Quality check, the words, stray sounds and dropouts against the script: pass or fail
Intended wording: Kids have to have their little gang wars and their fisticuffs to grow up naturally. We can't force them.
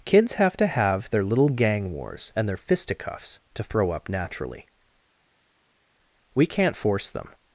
fail